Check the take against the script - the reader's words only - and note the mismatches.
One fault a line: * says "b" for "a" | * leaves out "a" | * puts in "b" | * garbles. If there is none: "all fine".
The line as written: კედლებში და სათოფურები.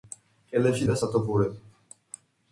all fine